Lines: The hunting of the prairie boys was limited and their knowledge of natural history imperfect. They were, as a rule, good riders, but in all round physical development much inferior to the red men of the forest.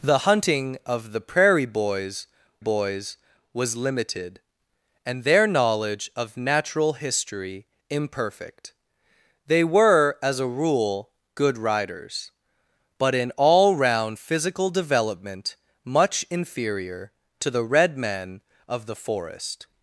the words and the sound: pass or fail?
fail